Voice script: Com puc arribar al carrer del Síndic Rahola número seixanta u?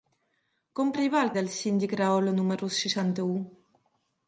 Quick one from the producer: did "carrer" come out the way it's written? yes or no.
no